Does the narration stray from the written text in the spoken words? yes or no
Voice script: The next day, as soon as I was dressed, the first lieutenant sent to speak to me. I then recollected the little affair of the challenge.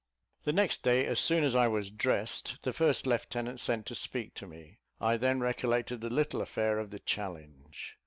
no